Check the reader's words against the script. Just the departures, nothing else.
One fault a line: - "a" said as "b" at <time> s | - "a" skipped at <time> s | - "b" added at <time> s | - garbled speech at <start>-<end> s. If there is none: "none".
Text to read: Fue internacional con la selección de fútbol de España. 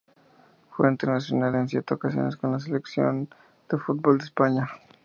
- "en siete ocasiones" added at 1.5 s